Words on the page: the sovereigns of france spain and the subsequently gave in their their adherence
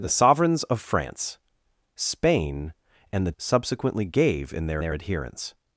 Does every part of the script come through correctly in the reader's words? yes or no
yes